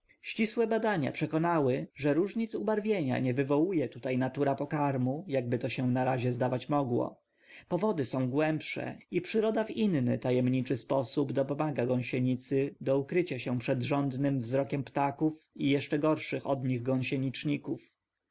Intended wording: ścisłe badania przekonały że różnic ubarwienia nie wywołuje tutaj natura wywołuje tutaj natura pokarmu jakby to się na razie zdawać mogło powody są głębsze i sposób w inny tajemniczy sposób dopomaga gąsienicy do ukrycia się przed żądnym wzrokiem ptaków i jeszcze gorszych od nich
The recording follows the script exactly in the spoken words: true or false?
false